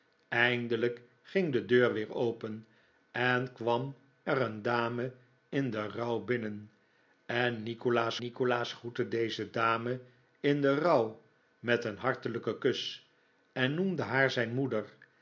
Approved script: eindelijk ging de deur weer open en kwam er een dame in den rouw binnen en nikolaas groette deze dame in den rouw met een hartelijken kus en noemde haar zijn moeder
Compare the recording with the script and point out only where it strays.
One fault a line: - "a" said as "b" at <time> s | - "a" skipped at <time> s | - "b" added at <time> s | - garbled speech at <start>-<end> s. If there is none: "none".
- "nikolaas" added at 8.2 s